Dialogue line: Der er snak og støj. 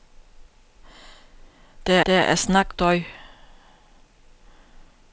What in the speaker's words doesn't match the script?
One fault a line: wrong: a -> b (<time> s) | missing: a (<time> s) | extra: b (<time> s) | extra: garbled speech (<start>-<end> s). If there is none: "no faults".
extra: der (2.1 s)
missing: og (2.7 s)